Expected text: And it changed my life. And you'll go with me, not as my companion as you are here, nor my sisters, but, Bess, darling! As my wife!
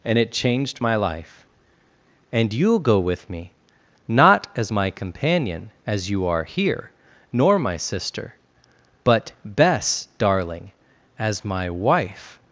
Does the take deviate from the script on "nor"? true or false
false